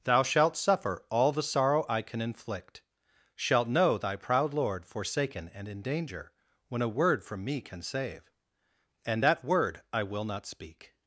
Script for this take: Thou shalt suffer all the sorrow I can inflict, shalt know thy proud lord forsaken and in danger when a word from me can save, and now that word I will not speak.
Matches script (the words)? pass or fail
fail